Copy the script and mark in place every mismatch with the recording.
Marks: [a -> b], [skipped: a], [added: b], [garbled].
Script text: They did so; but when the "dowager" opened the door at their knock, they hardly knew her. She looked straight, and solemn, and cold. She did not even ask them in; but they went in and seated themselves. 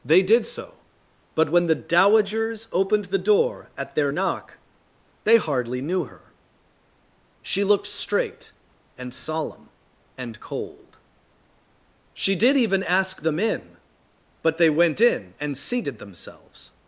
They did so; but when the ["dowager" -> dowagers] opened the door at their knock, they hardly knew her. She looked straight, and solemn, and cold. She did [skipped: not] even ask them in; but they went in and seated themselves.